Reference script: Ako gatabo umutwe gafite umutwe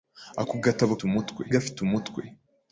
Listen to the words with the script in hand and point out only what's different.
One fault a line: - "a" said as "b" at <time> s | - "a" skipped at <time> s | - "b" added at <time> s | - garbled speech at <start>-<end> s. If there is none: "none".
none